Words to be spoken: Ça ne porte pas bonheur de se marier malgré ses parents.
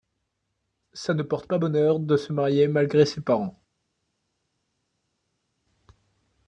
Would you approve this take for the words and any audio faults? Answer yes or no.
yes